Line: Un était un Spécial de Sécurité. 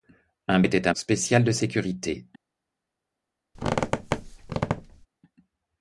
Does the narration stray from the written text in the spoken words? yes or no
no